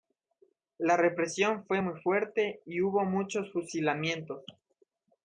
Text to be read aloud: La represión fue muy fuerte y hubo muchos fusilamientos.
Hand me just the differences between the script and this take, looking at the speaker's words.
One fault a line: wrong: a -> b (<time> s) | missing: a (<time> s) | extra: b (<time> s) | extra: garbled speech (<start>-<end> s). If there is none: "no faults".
no faults